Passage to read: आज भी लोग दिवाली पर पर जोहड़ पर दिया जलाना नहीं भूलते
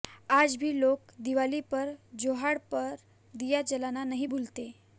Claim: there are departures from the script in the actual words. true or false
true